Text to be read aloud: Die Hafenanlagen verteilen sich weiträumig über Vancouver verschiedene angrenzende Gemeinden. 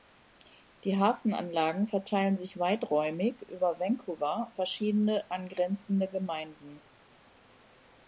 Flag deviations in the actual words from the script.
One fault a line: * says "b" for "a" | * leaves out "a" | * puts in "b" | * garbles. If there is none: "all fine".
all fine